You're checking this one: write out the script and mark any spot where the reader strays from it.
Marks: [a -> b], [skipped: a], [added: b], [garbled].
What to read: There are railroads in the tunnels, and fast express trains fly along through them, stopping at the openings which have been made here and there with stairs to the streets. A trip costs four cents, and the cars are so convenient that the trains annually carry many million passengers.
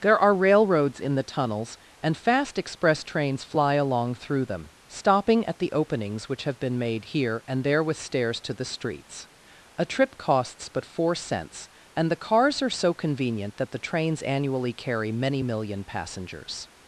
There are railroads in the tunnels, and fast express trains fly along through them, stopping at the openings which have been made here and there with stairs to the streets. A trip costs [added: but] four cents, and the cars are so convenient that the trains annually carry many million passengers.